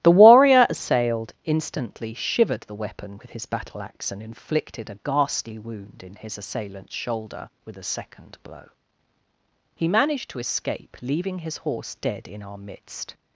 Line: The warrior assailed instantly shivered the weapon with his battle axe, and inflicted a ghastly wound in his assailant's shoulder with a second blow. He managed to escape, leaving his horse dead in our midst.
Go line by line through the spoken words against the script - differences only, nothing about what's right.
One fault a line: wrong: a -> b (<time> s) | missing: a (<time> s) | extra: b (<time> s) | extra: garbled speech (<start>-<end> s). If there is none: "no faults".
no faults